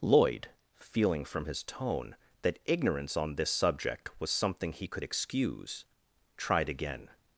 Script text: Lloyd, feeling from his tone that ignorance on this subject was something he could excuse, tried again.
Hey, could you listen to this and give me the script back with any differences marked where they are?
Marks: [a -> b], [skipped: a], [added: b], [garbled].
Lloyd, feeling from his tone that ignorance on this subject was something he could excuse, tried again.